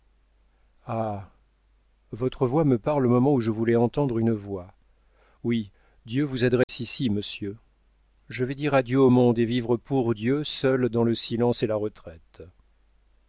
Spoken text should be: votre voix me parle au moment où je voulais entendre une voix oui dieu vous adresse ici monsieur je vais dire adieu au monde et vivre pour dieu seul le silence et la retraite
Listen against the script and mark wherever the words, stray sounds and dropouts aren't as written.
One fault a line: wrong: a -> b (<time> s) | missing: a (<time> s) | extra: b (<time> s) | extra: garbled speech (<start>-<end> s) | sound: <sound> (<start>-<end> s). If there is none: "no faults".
sound: dropout (6.6-6.7 s)
extra: dans (10.9 s)